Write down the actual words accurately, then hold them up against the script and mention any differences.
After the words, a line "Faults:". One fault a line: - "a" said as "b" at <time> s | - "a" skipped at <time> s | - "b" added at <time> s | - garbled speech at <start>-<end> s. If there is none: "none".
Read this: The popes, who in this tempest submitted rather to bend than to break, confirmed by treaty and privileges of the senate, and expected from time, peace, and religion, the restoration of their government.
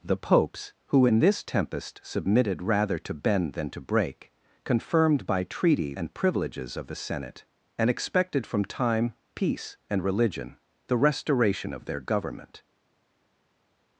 The popes, who in this tempest submitted rather to bend than to break, confirmed by treaty and privileges of the senate, and expected from time, peace, and religion, the restoration of their government.
Faults:
none